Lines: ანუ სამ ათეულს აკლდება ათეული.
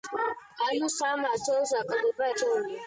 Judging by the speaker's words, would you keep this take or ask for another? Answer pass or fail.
pass